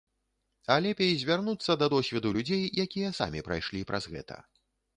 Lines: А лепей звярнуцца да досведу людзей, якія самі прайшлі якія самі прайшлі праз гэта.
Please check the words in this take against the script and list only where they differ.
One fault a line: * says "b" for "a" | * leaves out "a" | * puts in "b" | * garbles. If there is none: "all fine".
* leaves out "якія самі прайшлі"